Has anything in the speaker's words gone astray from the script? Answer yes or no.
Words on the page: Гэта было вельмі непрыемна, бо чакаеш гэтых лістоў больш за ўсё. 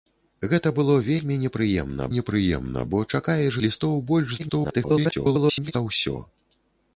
yes